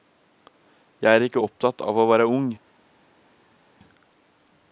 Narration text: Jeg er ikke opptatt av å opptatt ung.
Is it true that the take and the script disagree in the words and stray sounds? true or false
true